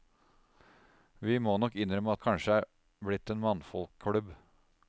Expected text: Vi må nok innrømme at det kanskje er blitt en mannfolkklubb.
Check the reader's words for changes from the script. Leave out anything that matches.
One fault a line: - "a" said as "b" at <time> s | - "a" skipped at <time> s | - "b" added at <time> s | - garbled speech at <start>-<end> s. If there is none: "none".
- "at" skipped at 2.1 s